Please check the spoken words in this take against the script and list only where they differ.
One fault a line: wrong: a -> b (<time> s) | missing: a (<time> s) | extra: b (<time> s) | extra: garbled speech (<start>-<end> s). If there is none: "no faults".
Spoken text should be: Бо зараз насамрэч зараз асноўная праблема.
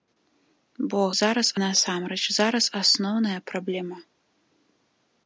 no faults